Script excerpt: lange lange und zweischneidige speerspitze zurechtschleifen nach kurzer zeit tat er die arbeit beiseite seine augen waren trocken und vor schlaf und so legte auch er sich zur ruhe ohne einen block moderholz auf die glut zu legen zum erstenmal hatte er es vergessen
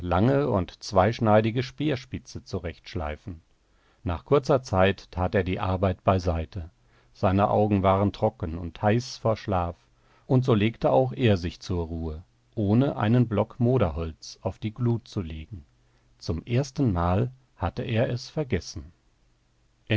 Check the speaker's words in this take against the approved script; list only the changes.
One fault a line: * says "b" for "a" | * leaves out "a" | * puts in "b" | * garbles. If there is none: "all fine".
* leaves out "lange"
* puts in "heiß"